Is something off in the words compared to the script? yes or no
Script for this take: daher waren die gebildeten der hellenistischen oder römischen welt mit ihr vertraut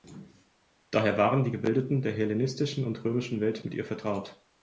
yes